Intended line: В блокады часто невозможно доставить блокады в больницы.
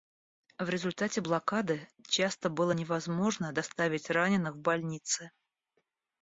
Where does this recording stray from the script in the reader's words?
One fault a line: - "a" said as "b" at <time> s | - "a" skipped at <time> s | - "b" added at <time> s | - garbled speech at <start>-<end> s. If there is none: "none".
- "результате" added at 0.7 s
- "было" added at 2.5 s
- "блокады" said as "раненых" at 4.1 s